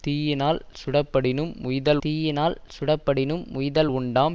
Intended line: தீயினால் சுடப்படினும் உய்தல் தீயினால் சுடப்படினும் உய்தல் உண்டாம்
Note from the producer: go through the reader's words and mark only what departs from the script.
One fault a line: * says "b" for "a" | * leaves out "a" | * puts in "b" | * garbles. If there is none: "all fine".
all fine